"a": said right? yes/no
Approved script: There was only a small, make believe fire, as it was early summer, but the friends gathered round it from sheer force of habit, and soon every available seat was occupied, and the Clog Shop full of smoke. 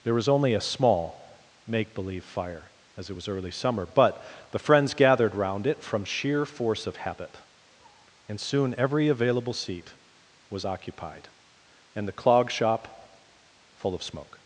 yes